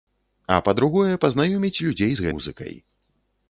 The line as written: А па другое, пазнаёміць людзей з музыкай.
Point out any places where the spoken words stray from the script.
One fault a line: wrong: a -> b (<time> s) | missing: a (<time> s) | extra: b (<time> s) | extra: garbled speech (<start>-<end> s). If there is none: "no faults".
no faults